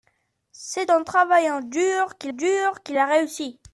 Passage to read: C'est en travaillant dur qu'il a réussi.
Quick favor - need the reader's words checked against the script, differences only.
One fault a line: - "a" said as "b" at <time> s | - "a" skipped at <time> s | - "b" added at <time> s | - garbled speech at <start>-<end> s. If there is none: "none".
- "dur qu'il" added at 2.3 s